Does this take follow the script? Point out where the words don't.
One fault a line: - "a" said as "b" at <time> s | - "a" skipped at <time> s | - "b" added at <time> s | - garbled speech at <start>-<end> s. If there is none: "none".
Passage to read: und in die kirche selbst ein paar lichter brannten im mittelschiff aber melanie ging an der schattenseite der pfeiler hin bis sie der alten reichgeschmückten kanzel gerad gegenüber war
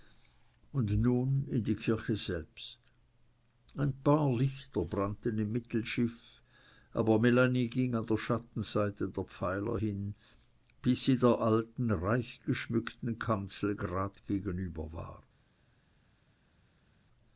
- "nun" added at 1.0 s